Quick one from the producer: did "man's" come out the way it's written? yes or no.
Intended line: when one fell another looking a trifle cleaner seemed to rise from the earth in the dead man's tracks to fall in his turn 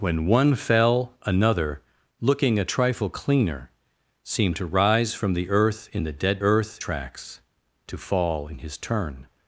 no